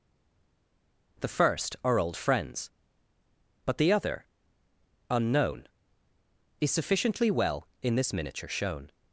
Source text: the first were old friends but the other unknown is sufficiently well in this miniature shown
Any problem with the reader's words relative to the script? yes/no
yes